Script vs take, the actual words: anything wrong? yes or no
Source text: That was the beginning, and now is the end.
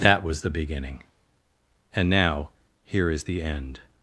yes